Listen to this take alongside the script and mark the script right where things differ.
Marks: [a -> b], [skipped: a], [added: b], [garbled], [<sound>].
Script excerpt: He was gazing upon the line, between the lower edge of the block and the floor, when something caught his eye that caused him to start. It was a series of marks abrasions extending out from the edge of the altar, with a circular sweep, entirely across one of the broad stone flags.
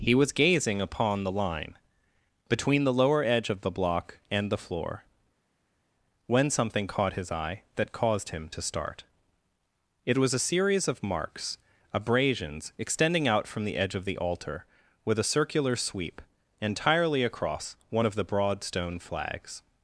He was gazing upon the line, between the lower edge of the block and the floor, when something caught his eye that caused him to start. It was a series of marks abrasions extending out from the edge of the altar, with a circular sweep, entirely across one of the broad stone flags.